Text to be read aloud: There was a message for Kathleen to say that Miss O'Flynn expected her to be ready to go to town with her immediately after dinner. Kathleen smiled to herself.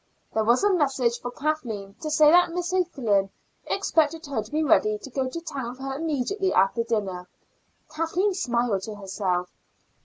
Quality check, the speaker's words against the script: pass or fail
pass